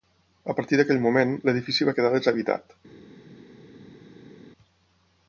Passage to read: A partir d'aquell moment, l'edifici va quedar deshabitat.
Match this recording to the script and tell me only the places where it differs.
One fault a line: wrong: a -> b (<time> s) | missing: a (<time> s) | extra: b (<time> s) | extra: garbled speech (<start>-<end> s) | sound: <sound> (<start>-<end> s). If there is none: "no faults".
no faults